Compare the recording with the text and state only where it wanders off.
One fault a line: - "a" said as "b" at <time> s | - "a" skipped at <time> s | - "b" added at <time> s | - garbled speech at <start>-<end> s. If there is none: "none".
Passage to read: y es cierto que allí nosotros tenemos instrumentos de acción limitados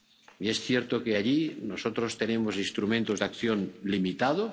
none